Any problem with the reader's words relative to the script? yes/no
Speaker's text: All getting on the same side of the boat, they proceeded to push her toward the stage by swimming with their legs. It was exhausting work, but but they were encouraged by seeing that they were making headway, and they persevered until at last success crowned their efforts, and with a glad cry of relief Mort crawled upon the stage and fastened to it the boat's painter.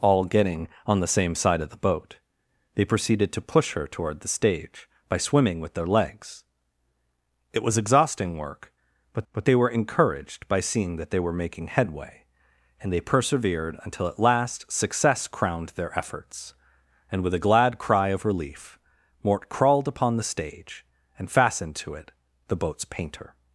no